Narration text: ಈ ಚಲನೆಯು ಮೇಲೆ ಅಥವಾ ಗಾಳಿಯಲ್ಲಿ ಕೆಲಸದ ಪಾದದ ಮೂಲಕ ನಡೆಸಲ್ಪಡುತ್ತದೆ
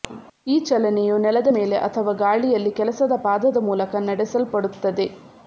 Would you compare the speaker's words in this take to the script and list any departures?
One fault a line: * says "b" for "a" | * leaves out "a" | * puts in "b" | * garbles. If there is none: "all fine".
* puts in "ನೆಲದ"